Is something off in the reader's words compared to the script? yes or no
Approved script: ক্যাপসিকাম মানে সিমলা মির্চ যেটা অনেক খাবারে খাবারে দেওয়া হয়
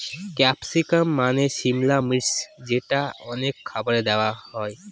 yes